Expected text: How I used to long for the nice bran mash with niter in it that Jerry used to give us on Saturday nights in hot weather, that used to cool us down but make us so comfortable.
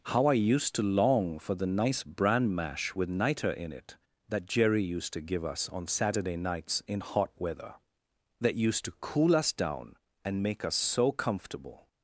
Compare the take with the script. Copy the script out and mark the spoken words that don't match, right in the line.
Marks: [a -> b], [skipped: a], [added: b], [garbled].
How I used to long for the nice bran mash with niter in it that Jerry used to give us on Saturday nights in hot weather, that used to cool us down [but -> and] make us so comfortable.